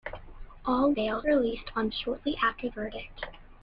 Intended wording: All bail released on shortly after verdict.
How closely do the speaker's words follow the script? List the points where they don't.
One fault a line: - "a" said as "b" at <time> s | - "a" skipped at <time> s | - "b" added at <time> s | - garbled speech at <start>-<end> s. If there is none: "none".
none